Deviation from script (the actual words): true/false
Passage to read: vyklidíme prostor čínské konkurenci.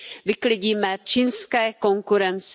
true